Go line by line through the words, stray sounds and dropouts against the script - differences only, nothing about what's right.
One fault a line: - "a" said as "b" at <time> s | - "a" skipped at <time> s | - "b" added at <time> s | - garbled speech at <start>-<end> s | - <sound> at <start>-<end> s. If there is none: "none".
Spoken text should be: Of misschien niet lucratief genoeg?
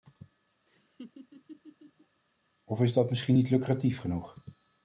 - laugh at 0.7-2.2 s
- "is dat" added at 2.8 s